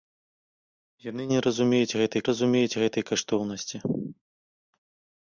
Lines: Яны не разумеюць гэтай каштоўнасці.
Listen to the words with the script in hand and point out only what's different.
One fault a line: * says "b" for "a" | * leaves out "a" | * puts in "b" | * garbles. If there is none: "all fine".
* puts in "разумеюць гэтай"